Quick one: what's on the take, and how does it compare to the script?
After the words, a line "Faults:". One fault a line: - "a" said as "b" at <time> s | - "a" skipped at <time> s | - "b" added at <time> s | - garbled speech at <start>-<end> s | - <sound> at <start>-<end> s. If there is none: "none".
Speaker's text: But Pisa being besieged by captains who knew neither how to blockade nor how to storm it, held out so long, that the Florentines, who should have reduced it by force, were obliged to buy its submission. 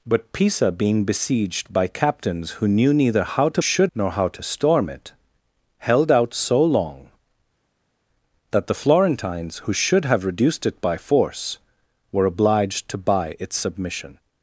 But Pisa being besieged by captains who knew neither how to should nor how to storm it, held out so long, that the Florentines, who should have reduced it by force, were obliged to buy its submission.
Faults:
- "blockade" said as "should" at 3.6 s